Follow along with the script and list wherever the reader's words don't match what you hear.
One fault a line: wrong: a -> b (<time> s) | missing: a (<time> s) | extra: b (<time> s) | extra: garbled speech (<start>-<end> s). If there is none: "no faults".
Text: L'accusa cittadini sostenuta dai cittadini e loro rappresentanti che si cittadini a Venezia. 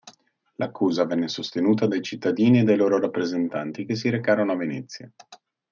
wrong: cittadini -> venne (1.1 s)
extra: dai (2.6 s)
wrong: cittadini -> recarono (4.1 s)